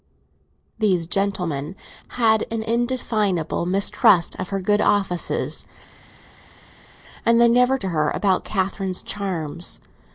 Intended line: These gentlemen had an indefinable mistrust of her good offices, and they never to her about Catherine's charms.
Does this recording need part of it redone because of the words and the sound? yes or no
no